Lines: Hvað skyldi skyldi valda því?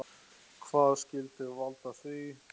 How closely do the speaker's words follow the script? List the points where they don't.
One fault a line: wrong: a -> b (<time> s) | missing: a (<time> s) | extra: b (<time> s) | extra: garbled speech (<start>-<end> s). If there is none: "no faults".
missing: skyldi (1.5 s)